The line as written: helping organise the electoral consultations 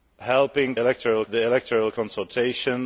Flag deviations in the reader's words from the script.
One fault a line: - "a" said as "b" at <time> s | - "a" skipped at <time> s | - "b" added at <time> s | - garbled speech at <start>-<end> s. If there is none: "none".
- "organise" said as "electoral" at 0.8 s